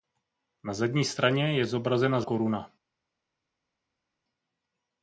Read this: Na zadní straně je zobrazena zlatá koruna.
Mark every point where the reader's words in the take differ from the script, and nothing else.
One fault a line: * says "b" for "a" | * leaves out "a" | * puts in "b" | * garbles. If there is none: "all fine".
* leaves out "zlatá"